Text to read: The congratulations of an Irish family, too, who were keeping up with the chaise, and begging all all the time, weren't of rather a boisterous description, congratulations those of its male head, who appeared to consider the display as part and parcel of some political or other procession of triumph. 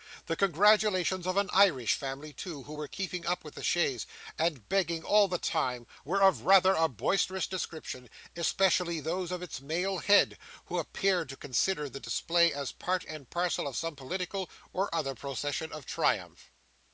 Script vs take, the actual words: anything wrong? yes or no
yes